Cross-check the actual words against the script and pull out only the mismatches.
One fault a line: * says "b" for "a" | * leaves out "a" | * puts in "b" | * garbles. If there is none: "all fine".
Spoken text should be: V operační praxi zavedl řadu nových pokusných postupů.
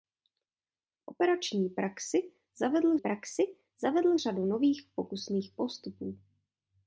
* puts in "praxi zavedl"